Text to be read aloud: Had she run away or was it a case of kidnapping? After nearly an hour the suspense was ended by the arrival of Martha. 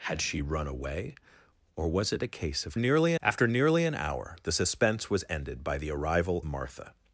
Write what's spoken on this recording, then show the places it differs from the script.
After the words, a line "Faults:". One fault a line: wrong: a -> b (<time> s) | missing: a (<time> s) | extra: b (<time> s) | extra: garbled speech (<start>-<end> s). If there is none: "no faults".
Had she run away or was it a case of nearly? After nearly an hour the suspense was ended by the arrival Martha.
Faults:
wrong: kidnapping -> nearly (2.8 s)
missing: of (6.4 s)